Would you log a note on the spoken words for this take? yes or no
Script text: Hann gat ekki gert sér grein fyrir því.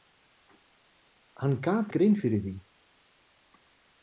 yes